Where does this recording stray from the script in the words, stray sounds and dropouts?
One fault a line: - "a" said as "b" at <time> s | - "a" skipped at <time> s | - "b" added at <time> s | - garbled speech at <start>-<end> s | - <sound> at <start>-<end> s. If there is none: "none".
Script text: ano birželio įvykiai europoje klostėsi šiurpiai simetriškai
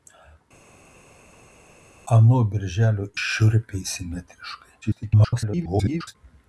- "įvykiai europoje klostėsi" skipped at 3.0 s
- garbled speech at 4.8-6.2 s